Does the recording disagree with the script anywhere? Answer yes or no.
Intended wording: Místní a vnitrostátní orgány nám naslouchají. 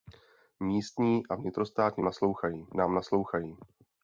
yes